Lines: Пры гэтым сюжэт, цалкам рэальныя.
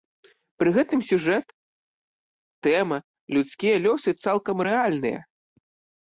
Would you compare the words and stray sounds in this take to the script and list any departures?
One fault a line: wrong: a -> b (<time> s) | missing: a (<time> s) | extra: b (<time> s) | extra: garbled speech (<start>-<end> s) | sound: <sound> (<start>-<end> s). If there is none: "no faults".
extra: тэма людскія лёсы (2.7 s)